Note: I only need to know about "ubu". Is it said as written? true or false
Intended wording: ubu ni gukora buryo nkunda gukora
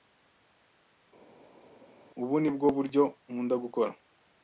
true